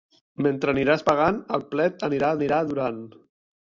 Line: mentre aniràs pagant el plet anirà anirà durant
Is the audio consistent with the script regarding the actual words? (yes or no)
yes